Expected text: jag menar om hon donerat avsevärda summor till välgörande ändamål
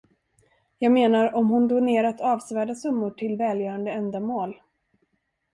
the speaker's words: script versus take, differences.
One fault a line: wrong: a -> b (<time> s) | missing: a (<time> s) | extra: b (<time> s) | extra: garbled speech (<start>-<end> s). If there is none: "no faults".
no faults